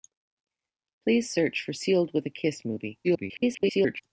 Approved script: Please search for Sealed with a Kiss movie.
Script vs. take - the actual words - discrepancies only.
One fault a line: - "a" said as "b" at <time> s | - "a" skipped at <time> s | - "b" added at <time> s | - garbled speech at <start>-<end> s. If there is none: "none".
- garbled speech at 3.0-4.0 s